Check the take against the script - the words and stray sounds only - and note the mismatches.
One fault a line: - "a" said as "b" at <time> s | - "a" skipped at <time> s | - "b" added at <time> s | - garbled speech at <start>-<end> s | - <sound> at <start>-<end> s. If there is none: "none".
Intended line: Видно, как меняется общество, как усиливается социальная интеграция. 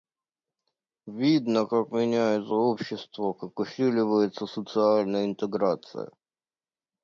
none